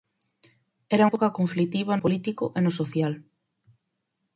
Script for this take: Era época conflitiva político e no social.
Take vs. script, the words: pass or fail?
pass